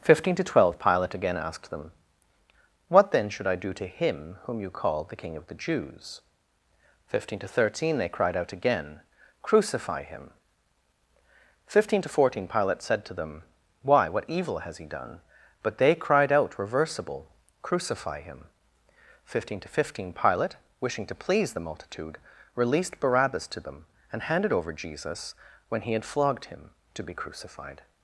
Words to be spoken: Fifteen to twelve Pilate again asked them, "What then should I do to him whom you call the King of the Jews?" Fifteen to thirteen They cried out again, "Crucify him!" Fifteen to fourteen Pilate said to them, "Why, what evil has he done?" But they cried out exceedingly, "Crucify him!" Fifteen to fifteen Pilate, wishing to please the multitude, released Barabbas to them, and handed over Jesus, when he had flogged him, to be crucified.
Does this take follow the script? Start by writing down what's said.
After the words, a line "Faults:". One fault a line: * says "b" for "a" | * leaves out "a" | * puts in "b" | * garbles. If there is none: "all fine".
Fifteen to twelve Pilate again asked them, "What then should I do to him whom you call the King of the Jews?" Fifteen to thirteen They cried out again, "Crucify him!" Fifteen to fourteen Pilate said to them, "Why, what evil has he done?" But they cried out reversible, "Crucify him!" Fifteen to fifteen Pilate, wishing to please the multitude, released Barabbas to them, and handed over Jesus, when he had flogged him, to be crucified.
Faults:
* says "reversible" for "exceedingly"